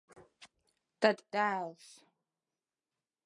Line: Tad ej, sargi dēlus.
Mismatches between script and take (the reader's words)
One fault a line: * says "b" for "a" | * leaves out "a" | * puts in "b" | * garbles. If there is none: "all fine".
* leaves out "ej sargi"